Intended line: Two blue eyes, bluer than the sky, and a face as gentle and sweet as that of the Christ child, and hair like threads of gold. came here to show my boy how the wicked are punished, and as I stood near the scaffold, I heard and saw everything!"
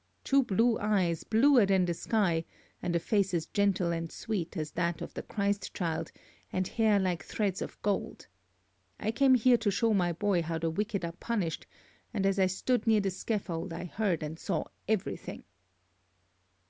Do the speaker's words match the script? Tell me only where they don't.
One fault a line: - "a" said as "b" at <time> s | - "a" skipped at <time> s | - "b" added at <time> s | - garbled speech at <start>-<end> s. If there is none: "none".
- "I" added at 9.0 s